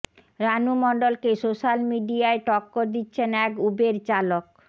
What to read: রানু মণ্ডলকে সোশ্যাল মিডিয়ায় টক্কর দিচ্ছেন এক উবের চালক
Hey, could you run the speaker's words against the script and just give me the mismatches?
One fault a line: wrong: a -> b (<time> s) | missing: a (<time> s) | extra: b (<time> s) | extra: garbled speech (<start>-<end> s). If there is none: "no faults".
no faults